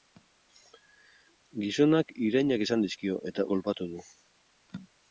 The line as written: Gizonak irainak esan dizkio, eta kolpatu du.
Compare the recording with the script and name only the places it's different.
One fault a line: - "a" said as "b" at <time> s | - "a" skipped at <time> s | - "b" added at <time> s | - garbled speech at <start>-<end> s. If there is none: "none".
none